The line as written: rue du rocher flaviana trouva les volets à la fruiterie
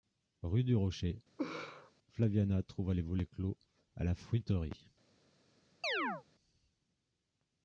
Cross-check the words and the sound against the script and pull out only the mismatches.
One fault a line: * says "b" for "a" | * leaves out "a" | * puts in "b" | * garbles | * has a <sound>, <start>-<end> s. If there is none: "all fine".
* has a laugh, 1.4-1.9 s
* puts in "clos"
* has a chirp, 5.8-6.2 s